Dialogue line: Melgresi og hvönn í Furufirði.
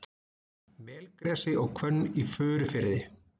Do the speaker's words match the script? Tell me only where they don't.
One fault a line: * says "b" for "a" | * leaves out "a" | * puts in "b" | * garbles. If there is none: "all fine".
all fine